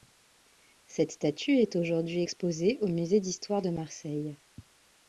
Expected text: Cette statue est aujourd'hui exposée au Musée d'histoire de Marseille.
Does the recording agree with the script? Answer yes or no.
yes